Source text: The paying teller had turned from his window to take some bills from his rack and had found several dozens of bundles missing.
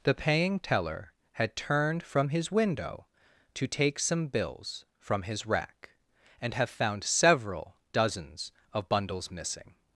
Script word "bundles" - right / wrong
right